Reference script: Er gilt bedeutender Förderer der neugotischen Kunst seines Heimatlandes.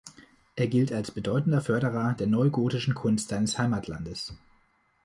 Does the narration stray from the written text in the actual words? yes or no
yes